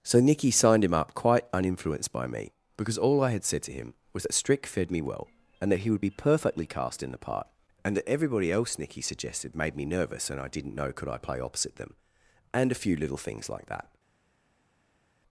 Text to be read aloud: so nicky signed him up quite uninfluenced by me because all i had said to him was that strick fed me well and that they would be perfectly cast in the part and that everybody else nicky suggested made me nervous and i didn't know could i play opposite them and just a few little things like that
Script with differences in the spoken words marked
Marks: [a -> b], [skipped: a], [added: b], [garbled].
so nicky signed him up quite uninfluenced by me because all i had said to him was that strick fed me well and that [they -> he] would be perfectly cast in the part and that everybody else nicky suggested made me nervous and i didn't know could i play opposite them and [skipped: just] a few little things like that